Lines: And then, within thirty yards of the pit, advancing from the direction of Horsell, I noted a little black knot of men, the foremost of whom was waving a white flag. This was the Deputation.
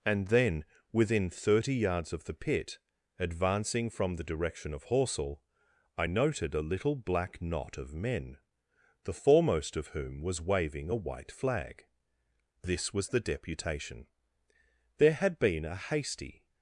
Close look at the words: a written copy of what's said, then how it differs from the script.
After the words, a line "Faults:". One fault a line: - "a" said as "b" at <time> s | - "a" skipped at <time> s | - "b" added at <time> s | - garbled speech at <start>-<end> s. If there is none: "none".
And then, within thirty yards of the pit, advancing from the direction of Horsell, I noted a little black knot of men, the foremost of whom was waving a white flag. This was the Deputation. There had been a hasty
Faults:
- "There had been a hasty" added at 15.0 s